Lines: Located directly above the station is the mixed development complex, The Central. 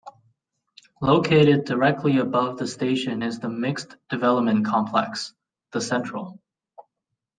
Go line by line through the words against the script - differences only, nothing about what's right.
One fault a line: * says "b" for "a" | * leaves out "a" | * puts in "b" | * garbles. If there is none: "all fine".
all fine